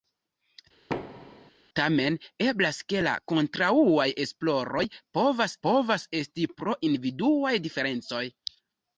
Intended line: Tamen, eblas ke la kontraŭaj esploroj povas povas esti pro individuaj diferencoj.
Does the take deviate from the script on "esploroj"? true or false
false